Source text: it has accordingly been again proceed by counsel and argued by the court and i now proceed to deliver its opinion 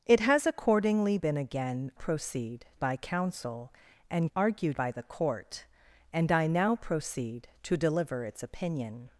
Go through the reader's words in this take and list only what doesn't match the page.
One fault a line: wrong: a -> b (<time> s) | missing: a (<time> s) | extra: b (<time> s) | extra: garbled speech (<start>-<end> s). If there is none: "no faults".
no faults